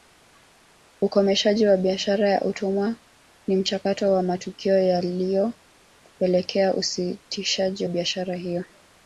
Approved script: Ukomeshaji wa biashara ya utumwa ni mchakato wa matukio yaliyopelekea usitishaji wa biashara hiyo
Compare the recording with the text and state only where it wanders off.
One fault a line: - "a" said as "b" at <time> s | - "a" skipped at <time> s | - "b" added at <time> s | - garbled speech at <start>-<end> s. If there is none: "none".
- "wa" skipped at 7.9 s